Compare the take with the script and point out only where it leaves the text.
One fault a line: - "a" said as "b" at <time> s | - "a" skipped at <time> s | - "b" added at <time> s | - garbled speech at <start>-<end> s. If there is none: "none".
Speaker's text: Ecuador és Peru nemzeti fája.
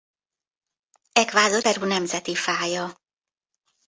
- "és" skipped at 1.6 s